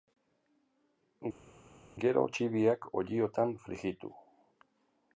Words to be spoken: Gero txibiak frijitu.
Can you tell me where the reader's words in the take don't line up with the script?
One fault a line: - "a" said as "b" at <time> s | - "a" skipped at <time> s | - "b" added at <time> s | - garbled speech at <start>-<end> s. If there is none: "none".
- "olliotan" added at 3.0 s